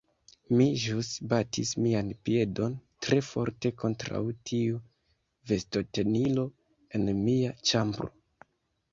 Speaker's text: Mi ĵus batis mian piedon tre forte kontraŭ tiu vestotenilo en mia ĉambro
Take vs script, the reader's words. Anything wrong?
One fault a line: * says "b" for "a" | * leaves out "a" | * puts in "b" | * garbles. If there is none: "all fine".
all fine